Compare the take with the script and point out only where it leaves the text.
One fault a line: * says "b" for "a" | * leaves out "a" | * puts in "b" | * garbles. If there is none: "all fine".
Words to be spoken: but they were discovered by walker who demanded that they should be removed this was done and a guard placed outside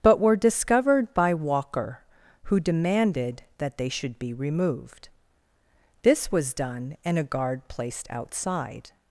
* leaves out "they"